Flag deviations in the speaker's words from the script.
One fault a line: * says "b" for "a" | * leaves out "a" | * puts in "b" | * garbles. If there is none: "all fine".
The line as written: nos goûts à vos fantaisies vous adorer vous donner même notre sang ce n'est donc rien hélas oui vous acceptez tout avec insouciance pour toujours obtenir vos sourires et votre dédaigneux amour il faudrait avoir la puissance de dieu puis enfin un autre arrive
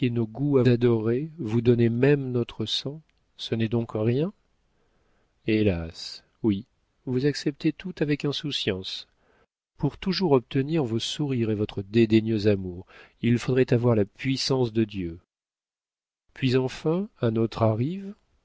* leaves out "vos fantaisies vous"